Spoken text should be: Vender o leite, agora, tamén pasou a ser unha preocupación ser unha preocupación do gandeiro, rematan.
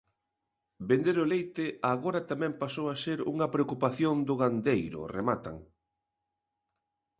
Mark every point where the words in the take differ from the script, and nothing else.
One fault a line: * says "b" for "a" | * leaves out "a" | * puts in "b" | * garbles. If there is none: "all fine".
* leaves out "ser unha preocupación"